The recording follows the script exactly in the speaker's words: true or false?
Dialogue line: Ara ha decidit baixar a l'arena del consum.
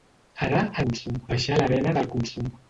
false